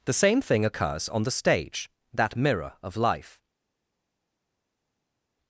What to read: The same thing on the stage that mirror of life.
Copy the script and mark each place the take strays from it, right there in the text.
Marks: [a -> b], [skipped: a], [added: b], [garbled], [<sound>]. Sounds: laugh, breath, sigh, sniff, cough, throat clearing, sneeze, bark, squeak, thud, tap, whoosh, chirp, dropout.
The same thing [added: occurs] on the stage that mirror of life.